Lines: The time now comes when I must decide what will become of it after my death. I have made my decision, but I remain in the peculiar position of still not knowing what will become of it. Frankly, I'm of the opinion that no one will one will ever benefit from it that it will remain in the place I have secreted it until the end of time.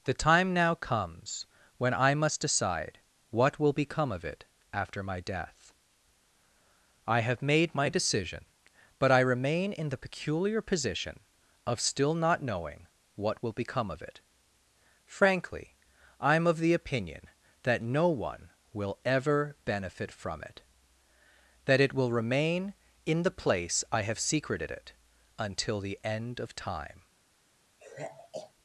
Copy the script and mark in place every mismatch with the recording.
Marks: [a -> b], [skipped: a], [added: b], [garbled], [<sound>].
The time now comes when I must decide what will become of it after my death. I have made my decision, but I remain in the peculiar position of still not knowing what will become of it. Frankly, I'm of the opinion that no one will [skipped: one will] ever benefit from it that it will remain in the place I have secreted it until the end of time. [sigh]